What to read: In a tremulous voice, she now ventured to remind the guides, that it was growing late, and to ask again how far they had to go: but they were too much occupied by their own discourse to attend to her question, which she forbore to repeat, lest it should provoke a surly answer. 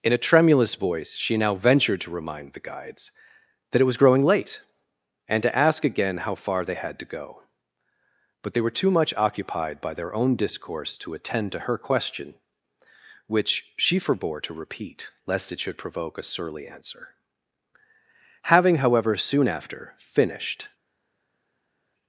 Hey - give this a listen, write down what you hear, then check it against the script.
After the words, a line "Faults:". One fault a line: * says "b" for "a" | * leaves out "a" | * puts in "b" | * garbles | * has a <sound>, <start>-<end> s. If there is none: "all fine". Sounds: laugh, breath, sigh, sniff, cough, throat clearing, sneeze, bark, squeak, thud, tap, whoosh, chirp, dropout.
In a tremulous voice, she now ventured to remind the guides, that it was growing late, and to ask again how far they had to go: but they were too much occupied by their own discourse to attend to her question, which she forbore to repeat, lest it should provoke a surly answer. Having, however, soon after, finished
Faults:
* puts in "Having however soon after finished"